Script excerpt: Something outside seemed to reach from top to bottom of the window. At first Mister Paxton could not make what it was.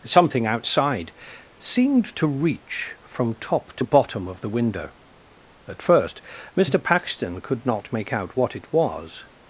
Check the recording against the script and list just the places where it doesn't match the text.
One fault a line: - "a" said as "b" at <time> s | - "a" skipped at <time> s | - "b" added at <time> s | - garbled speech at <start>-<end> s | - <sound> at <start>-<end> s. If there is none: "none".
- "out" added at 8.1 s